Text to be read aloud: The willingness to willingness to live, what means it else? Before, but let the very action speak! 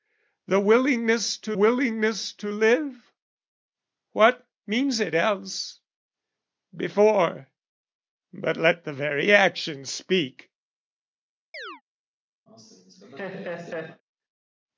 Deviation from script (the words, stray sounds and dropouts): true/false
true